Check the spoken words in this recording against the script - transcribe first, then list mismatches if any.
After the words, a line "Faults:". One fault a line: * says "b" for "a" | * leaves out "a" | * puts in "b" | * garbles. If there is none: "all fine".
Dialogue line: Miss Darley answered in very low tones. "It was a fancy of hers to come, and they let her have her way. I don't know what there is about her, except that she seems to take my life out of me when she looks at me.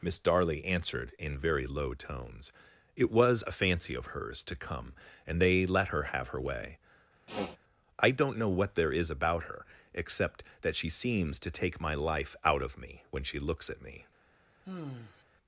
Miss Darley answered in very low tones. "It was a fancy of hers to come, and they let her have her way. I don't know what there is about her, except that she seems to take my life out of me when she looks at me.
Faults:
all fine